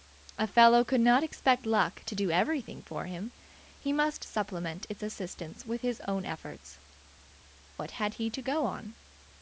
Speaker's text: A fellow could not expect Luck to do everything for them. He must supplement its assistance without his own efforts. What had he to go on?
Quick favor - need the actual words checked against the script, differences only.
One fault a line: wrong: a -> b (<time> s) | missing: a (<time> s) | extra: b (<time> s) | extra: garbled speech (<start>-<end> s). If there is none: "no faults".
wrong: them -> him (3.1 s)
wrong: without -> with (5.6 s)